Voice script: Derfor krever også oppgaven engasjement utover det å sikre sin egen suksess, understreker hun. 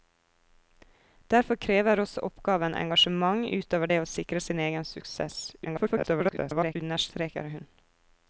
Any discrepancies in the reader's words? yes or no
yes